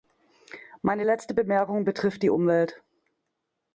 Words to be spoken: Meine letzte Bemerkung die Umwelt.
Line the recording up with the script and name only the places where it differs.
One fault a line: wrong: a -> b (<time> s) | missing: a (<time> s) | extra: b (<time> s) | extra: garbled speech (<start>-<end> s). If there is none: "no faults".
extra: betrifft (1.8 s)